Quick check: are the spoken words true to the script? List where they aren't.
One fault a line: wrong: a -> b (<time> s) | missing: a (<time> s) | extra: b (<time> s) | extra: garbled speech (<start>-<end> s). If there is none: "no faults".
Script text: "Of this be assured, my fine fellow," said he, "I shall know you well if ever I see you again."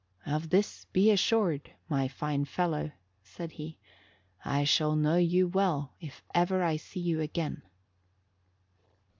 no faults